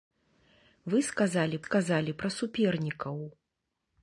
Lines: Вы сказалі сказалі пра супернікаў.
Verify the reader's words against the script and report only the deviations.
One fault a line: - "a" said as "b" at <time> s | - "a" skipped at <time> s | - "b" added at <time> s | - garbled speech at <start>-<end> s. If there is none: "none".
none